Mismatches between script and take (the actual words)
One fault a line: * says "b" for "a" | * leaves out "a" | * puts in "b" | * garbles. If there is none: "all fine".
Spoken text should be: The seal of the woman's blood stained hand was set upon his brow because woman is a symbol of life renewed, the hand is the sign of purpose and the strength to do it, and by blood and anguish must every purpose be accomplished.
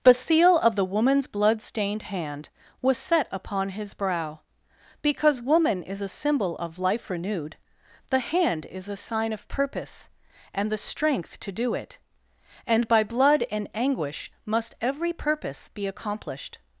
* says "a" for "the"